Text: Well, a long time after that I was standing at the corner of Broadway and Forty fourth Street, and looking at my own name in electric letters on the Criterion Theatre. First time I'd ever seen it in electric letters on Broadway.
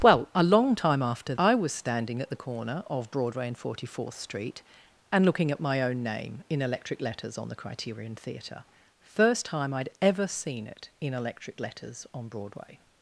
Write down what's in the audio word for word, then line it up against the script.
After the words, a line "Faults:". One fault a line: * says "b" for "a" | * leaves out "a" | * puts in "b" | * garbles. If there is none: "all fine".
Well, a long time after I was standing at the corner of Broadway and Forty fourth Street, and looking at my own name in electric letters on the Criterion Theatre. First time I'd ever seen it in electric letters on Broadway.
Faults:
* leaves out "that"